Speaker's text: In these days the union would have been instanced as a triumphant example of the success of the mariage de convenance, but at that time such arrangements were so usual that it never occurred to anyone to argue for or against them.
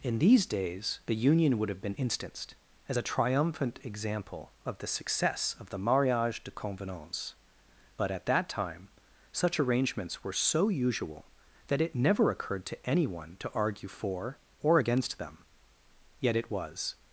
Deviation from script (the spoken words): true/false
true